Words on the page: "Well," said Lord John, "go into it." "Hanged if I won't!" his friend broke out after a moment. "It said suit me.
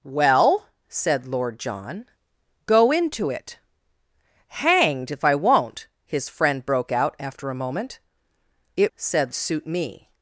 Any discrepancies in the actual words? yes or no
no